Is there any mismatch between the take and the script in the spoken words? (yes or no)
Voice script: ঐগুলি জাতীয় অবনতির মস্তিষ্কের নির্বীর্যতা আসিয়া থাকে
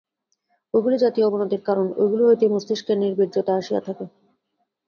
yes